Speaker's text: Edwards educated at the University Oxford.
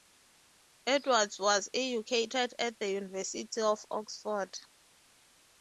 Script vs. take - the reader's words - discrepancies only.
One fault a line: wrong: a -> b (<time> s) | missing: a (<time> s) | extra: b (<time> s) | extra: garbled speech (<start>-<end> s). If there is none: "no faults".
extra: was (1.4 s)
extra: of (3.6 s)